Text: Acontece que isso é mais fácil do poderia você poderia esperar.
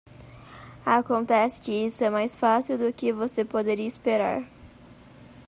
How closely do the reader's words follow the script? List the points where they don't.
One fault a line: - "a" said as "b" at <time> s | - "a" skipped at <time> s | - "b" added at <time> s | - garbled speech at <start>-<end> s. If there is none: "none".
- "poderia" said as "que" at 2.9 s